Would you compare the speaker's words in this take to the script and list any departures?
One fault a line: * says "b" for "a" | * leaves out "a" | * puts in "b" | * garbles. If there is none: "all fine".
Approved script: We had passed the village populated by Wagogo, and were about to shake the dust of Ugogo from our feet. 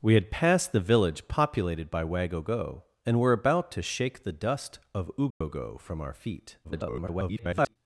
* garbles